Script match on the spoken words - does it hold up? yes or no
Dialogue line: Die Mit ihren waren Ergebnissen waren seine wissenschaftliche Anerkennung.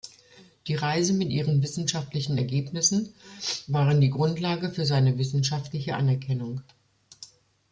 no